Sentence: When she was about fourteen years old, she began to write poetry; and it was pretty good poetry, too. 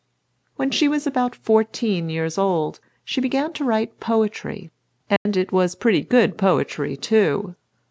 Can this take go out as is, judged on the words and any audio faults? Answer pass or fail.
fail